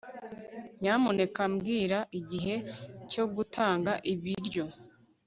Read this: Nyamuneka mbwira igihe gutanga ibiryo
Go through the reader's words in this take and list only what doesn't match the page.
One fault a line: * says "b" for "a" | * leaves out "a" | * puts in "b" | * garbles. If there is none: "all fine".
* puts in "cyo"